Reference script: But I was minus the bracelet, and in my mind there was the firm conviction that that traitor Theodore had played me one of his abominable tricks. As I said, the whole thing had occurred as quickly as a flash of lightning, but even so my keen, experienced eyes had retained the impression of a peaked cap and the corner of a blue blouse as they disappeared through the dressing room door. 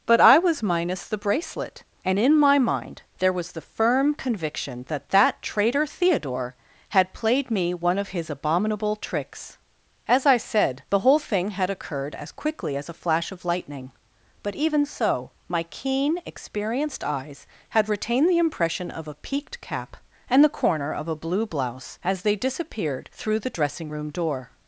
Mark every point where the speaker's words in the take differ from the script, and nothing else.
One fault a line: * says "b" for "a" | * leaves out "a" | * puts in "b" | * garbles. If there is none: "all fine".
all fine